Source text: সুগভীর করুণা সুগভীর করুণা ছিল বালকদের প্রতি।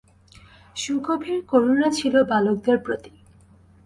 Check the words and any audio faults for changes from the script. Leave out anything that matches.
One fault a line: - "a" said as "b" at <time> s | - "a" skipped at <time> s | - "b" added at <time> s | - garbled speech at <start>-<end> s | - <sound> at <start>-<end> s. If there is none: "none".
- "সুগভীর করুণা" skipped at 1.9 s